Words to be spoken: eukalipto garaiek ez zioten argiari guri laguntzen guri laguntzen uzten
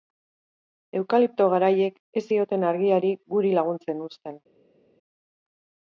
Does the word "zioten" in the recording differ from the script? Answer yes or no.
no